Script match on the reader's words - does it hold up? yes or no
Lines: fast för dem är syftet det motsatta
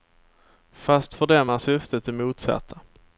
yes